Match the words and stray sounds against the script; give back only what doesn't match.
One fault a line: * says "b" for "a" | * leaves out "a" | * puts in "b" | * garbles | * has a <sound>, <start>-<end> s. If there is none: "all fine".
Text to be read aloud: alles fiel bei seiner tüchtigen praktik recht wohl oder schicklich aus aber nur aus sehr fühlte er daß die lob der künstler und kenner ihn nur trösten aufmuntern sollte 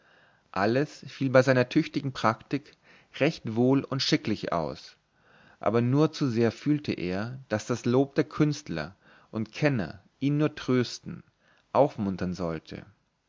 * says "und" for "oder"
* says "zu" for "aus"
* says "das" for "die"